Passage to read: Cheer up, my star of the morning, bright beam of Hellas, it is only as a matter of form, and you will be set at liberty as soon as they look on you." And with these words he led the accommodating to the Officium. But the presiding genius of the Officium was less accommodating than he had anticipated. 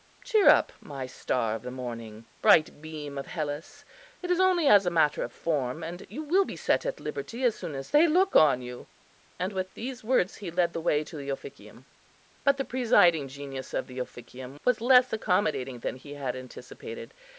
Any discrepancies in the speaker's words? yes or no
yes